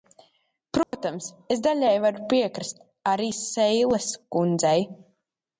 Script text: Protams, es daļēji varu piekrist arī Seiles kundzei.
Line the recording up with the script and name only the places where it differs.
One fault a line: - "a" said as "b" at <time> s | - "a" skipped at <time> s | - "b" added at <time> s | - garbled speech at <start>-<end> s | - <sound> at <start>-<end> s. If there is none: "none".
- dropout at 0.8-0.9 s